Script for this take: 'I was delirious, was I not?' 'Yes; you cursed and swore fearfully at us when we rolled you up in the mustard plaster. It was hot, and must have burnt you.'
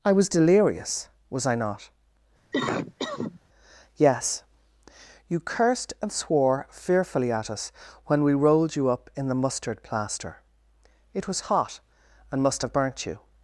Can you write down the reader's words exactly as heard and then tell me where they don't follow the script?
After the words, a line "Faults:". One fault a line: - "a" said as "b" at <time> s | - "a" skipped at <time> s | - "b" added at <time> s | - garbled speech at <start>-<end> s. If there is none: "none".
'I was delirious, was I not?' 'Yes; you cursed and swore fearfully at us when we rolled you up in the mustard plaster. It was hot, and must have burnt you.'
Faults:
none